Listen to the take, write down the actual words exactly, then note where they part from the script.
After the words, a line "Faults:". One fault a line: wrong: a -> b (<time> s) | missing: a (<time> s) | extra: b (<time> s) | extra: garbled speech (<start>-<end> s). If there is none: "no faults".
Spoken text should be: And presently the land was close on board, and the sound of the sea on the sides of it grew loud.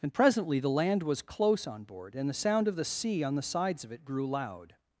And presently the land was close on board, and the sound of the sea on the sides of it grew loud.
Faults:
no faults